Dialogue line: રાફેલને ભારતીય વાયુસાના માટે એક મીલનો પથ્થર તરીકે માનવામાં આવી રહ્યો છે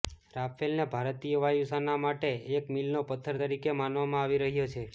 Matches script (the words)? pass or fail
pass